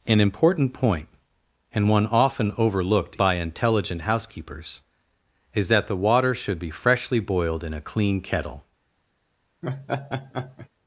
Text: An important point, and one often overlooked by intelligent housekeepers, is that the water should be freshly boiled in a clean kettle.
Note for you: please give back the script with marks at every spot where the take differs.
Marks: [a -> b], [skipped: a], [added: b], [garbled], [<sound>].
An important point, and one often overlooked by intelligent housekeepers, is that the water should be freshly boiled in a clean kettle. [laugh]